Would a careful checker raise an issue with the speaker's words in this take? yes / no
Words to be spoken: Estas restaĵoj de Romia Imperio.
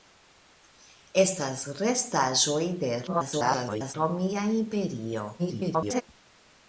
yes